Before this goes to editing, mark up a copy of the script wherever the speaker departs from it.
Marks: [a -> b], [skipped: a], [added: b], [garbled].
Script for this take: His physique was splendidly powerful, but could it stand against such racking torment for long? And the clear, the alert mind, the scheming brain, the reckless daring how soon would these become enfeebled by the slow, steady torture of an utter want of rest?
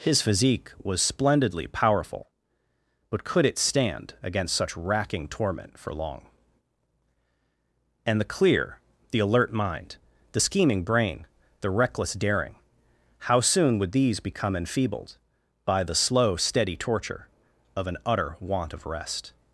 His physique was splendidly powerful, but could it stand against such racking torment for long? And the clear, the alert mind, the scheming brain, the reckless daring how soon would these become enfeebled by the slow, steady torture of an utter want of rest?